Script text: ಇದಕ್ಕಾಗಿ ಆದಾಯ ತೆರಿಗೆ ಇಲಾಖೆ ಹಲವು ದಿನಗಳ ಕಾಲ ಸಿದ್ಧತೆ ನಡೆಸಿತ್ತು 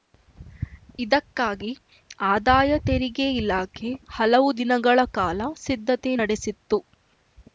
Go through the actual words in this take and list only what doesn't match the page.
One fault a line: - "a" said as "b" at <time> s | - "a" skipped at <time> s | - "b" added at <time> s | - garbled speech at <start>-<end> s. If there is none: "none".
none